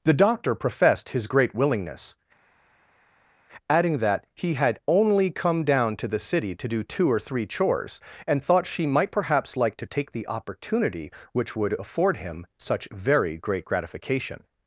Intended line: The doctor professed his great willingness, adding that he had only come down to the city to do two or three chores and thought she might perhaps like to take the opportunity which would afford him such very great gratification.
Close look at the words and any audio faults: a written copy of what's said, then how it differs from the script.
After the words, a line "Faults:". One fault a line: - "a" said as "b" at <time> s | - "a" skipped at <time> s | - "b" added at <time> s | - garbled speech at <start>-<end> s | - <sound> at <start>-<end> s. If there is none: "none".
The doctor professed his great willingness, adding that he had only come down to the city to do two or three chores and thought she might perhaps like to take the opportunity which would afford him such very great gratification.
Faults:
none